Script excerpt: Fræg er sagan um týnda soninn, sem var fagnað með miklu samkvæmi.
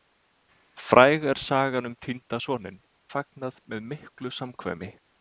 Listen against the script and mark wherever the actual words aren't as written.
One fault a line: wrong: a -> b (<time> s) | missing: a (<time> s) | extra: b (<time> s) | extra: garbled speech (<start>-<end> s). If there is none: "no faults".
missing: sem var (2.8 s)